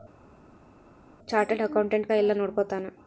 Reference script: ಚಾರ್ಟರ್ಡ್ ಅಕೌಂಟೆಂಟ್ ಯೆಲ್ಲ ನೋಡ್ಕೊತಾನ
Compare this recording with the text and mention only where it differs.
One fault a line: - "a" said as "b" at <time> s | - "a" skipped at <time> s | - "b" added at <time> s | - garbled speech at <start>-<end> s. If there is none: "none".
none